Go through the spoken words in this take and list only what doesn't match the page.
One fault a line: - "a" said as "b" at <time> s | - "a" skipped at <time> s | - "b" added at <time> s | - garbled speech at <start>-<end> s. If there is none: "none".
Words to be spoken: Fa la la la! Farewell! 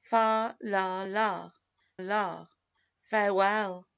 none